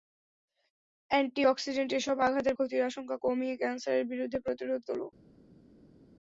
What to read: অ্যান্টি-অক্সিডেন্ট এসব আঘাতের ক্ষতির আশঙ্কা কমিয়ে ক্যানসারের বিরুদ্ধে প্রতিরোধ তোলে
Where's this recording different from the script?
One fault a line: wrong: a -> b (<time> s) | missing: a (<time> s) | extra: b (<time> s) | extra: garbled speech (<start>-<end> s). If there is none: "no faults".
no faults